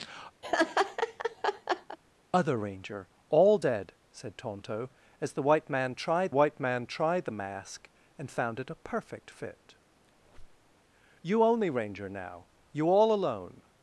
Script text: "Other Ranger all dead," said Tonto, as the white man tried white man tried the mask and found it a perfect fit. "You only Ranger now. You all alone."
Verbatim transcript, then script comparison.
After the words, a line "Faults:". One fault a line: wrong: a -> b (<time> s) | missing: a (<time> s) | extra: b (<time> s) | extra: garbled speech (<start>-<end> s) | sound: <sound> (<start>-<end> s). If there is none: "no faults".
"Other Ranger all dead," said Tonto, as the white man tried white man tried the mask and found it a perfect fit. "You only Ranger now. You all alone."
Faults:
sound: laugh (0.4-2.0 s)
sound: squeak (10.1-10.7 s)